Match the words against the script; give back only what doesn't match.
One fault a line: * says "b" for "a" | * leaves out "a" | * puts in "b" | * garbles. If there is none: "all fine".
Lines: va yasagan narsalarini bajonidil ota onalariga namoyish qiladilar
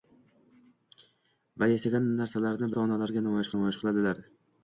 * leaves out "bajonidil"
* puts in "namoyish"